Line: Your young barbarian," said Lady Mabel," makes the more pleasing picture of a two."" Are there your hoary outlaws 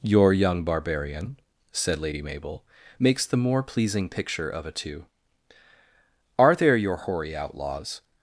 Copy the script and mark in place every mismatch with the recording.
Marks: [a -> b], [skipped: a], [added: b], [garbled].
Your young barbarian," said Lady Mabel," makes the more pleasing picture of a two."" Are there your hoary outlaws